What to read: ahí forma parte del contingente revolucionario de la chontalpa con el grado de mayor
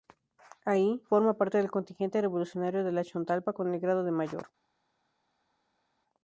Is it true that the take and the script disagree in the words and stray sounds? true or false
false